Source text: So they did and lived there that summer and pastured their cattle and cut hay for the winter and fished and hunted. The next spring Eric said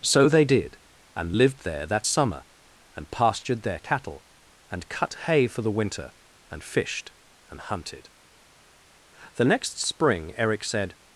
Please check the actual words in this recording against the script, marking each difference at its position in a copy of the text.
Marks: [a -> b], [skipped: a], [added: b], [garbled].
So they did and lived there that summer and pastured their cattle and cut hay for the winter and fished and hunted. The next spring Eric said